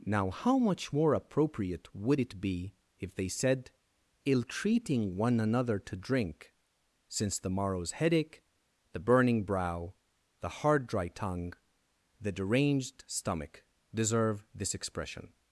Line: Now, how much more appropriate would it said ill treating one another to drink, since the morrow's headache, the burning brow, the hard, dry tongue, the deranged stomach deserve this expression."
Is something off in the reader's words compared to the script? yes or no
yes